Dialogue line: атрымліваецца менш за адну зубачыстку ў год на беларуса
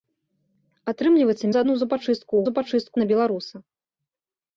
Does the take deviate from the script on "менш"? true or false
true